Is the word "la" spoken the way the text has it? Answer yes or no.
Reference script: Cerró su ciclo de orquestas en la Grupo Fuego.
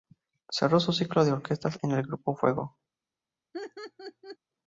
no